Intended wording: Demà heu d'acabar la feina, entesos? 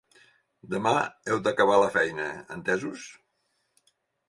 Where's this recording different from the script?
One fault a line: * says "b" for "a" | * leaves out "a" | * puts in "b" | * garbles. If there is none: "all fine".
all fine